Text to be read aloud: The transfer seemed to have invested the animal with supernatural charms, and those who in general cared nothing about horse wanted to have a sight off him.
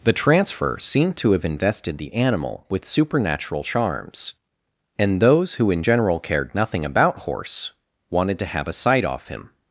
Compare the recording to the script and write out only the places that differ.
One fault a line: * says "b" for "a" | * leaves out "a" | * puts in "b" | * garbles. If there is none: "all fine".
all fine